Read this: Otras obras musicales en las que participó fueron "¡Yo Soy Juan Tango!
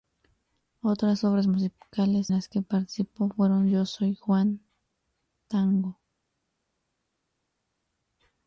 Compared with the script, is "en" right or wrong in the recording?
wrong